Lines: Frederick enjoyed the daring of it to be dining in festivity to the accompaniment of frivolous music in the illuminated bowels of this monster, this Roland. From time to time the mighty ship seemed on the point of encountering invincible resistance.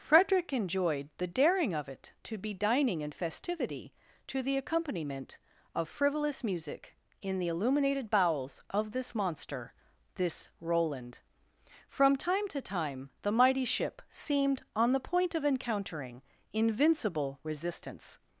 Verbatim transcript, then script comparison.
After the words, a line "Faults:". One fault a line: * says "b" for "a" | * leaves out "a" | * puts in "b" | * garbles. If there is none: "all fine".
Frederick enjoyed the daring of it to be dining in festivity to the accompaniment of frivolous music in the illuminated bowels of this monster, this Roland. From time to time the mighty ship seemed on the point of encountering invincible resistance.
Faults:
all fine